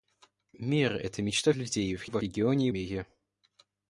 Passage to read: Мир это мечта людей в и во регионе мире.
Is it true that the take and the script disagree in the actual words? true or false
false